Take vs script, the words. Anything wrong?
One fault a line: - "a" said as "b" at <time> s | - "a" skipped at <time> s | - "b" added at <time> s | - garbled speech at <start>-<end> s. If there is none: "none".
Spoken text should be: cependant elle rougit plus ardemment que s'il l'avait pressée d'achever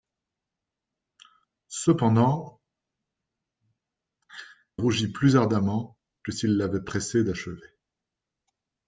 - "elle" skipped at 2.6 s